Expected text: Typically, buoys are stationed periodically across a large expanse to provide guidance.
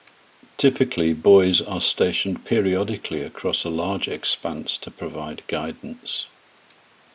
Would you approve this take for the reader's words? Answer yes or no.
yes